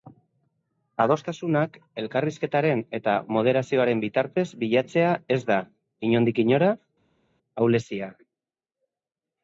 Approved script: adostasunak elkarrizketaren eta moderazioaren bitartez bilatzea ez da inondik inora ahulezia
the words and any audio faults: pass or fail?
pass